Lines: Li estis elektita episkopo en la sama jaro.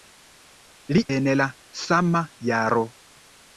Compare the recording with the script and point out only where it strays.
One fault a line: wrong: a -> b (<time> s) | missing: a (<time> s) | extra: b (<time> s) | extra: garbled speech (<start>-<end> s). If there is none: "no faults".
missing: estis elektita episkopo (1.0 s)